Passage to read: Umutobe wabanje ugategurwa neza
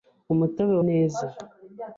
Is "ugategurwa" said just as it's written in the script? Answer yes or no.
no